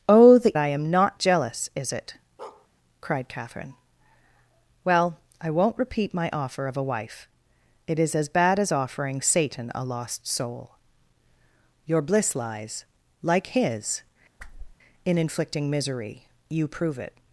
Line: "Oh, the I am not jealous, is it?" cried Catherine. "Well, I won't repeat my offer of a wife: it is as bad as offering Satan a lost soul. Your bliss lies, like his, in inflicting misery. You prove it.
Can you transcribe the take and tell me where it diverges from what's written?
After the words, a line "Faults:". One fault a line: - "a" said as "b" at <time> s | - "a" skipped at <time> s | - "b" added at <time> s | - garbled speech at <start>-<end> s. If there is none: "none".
"Oh, the I am not jealous, is it?" cried Catherine. "Well, I won't repeat my offer of a wife: it is as bad as offering Satan a lost soul. Your bliss lies, like his, in inflicting misery. You prove it.
Faults:
none